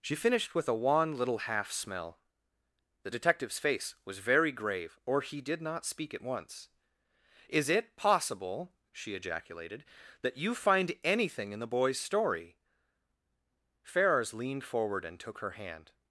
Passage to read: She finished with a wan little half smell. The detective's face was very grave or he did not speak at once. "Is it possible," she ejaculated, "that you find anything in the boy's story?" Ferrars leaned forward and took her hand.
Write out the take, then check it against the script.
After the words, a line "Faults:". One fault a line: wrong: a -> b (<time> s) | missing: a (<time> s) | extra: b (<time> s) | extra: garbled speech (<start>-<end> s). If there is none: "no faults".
She finished with a wan little half smell. The detective's face was very grave or he did not speak at once. "Is it possible," she ejaculated, "that you find anything in the boy's story?" Ferrars leaned forward and took her hand.
Faults:
no faults